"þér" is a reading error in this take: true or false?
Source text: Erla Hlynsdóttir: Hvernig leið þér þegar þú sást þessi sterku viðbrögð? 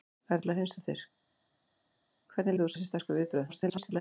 true